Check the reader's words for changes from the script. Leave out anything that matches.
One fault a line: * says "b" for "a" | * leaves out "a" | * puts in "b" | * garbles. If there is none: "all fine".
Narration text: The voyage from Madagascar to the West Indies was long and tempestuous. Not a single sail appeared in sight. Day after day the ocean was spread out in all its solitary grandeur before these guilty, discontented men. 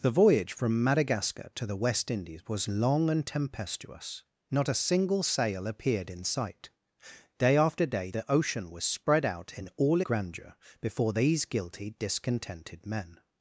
* leaves out "its solitary"